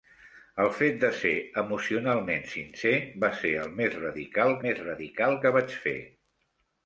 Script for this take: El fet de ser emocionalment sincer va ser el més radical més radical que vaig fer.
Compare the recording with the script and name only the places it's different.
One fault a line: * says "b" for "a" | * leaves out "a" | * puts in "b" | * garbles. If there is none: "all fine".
all fine